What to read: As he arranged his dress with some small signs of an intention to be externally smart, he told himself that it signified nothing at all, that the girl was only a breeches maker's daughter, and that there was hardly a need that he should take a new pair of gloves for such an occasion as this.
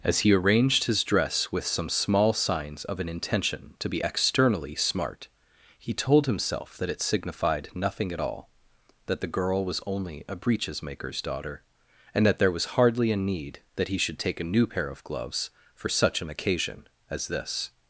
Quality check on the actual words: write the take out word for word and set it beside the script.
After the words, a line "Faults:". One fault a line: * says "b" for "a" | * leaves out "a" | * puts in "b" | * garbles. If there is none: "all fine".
As he arranged his dress with some small signs of an intention to be externally smart, he told himself that it signified nothing at all, that the girl was only a breeches maker's daughter, and that there was hardly a need that he should take a new pair of gloves for such an occasion as this.
Faults:
all fine